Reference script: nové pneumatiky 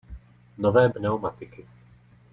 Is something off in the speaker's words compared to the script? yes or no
no